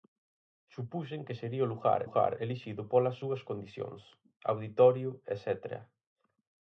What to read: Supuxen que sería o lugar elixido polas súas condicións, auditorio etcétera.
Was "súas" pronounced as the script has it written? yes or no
yes